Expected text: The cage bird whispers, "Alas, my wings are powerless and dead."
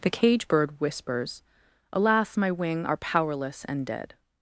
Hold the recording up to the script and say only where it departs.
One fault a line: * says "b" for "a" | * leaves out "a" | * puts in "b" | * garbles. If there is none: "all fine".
* says "wing" for "wings"